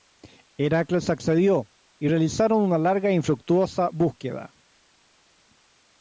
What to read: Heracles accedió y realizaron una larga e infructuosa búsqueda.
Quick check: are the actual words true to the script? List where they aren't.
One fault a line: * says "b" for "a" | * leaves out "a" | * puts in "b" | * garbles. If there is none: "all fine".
all fine